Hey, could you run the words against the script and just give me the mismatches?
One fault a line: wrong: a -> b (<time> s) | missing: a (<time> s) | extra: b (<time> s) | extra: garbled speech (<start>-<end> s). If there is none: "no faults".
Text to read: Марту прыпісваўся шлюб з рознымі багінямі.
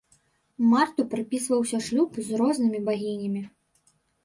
no faults